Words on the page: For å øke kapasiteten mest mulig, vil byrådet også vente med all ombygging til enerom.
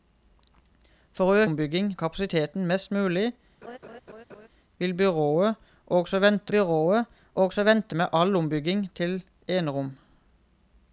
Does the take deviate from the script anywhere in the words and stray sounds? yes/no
yes